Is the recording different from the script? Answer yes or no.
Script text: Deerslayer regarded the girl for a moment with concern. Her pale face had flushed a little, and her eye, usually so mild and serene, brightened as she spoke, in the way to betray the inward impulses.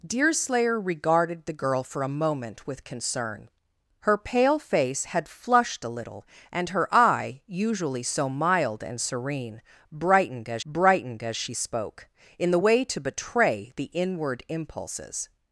yes